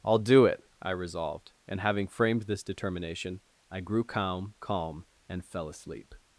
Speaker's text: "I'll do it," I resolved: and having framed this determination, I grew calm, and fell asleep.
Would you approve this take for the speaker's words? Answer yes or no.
no